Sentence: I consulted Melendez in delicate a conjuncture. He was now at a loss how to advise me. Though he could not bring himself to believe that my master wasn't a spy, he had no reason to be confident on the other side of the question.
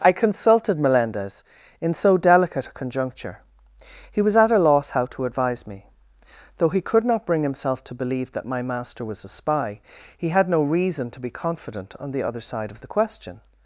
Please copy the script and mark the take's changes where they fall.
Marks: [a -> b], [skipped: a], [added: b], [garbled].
I consulted Melendez in [added: so] delicate a conjuncture. He was [skipped: now] at a loss how to advise me. Though he could not bring himself to believe that my master [wasn't -> was] a spy, he had no reason to be confident on the other side of the question.